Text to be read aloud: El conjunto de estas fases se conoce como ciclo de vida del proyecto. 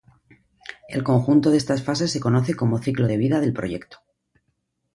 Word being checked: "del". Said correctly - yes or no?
yes